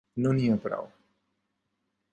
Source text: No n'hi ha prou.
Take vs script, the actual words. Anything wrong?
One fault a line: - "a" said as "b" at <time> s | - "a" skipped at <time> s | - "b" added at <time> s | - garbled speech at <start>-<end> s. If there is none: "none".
none